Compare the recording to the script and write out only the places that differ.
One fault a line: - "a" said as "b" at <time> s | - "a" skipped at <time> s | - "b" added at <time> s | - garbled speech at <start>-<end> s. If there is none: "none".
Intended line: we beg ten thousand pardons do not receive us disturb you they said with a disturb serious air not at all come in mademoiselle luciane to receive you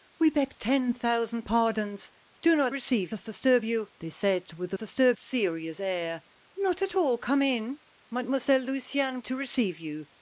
none